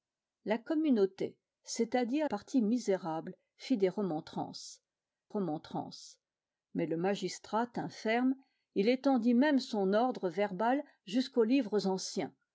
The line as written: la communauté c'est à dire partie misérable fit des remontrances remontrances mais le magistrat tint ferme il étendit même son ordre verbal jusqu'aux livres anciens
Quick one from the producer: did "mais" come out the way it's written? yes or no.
yes